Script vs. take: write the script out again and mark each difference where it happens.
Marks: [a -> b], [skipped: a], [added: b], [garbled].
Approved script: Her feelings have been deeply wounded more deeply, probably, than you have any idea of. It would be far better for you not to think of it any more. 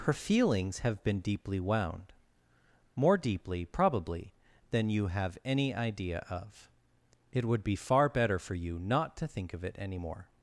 Her feelings have been deeply [wounded -> wound] more deeply, probably, than you have any idea of. It would be far better for you not to think of it any more.